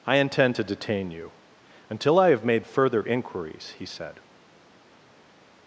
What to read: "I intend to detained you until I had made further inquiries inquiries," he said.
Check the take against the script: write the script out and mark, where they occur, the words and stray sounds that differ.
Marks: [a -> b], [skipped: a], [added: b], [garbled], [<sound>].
"I intend to [detained -> detain] you until I [had -> have] made further inquiries [skipped: inquiries,"] he said.